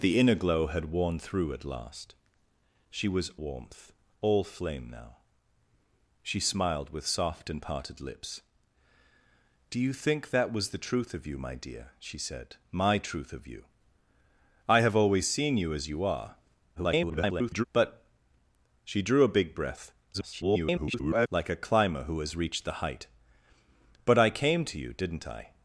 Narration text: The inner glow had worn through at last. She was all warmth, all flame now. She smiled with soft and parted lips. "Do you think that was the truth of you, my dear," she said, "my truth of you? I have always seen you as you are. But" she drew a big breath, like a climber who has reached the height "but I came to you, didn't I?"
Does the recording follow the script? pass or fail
fail